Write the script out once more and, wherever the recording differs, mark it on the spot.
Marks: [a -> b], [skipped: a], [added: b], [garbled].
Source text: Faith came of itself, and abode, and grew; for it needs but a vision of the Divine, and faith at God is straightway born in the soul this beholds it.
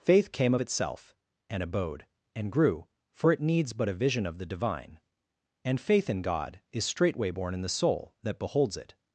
Faith came of itself, and abode, and grew; for it needs but a vision of the Divine, and faith [at -> in] God is straightway born in the soul [this -> that] beholds it.